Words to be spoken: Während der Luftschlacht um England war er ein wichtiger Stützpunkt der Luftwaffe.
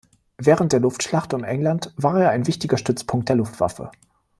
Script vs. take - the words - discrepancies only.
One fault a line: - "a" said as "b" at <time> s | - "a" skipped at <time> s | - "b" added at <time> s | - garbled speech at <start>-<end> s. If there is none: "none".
none